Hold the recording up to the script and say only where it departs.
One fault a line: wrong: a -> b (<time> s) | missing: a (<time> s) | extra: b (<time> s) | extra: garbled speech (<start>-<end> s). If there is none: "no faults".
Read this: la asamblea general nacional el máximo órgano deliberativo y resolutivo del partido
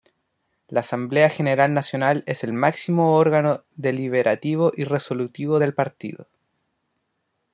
extra: es (2.2 s)